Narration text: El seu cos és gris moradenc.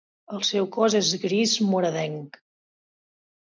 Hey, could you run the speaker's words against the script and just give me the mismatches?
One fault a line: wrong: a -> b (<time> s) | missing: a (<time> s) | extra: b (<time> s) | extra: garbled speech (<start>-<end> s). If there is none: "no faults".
no faults